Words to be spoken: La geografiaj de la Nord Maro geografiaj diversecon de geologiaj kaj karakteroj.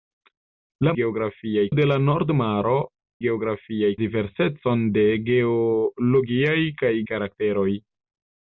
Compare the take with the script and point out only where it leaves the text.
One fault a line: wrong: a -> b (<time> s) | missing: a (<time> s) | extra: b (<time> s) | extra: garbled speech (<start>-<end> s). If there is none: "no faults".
no faults